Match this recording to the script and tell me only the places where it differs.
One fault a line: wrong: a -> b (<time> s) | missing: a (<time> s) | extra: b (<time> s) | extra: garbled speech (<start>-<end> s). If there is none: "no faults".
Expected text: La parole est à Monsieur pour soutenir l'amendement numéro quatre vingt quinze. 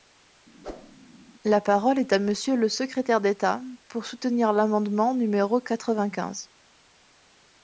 extra: le secrétaire d'État (2.5 s)